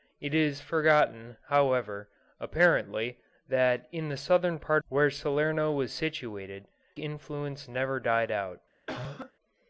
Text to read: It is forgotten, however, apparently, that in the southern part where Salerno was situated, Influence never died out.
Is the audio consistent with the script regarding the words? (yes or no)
yes